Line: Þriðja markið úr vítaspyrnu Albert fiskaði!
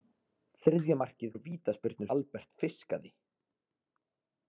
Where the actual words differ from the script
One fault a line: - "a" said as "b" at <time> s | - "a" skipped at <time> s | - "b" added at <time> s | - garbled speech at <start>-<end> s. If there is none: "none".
none